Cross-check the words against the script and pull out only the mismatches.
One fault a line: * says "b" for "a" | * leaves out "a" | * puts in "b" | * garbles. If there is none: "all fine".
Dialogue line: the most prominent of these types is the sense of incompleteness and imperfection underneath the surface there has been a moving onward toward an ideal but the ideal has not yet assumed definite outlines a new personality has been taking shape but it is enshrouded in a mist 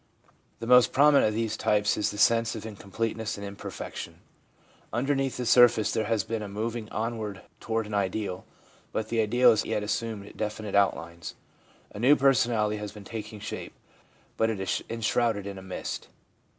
* leaves out "not"